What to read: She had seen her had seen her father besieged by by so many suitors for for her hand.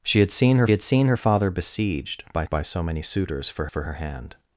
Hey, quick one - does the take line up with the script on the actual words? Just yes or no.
yes